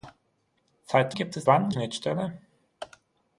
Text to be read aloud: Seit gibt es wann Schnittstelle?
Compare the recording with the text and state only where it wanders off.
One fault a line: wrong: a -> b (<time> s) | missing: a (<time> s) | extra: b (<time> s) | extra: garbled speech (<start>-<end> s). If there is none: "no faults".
no faults